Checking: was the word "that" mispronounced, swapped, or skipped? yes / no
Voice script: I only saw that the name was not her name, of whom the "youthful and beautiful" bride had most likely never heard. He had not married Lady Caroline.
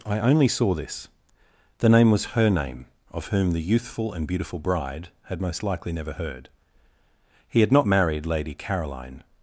yes